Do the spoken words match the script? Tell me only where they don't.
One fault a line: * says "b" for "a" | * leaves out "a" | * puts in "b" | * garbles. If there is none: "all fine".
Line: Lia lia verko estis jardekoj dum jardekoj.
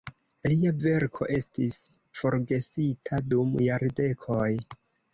* leaves out "lia"
* says "forgesita" for "jardekoj"